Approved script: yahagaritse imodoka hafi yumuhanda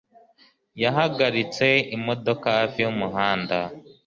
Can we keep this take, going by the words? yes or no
yes